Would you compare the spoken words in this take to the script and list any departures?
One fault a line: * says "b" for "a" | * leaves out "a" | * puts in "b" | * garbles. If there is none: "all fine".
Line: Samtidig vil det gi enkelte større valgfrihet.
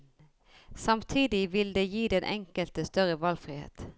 * puts in "den"